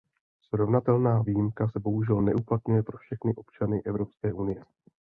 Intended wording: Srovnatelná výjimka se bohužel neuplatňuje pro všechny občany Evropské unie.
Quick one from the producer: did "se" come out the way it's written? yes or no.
yes